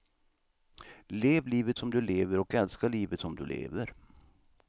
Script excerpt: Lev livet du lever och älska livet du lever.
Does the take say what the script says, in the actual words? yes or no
no